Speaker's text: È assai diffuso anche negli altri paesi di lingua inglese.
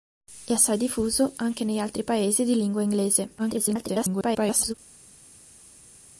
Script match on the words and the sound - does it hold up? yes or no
no